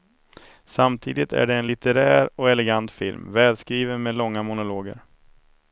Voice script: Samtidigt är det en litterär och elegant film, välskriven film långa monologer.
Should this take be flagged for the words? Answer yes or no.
yes